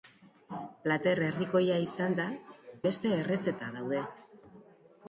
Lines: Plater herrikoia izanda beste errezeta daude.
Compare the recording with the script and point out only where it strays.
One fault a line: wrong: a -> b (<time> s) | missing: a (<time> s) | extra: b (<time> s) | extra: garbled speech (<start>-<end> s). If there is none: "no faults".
no faults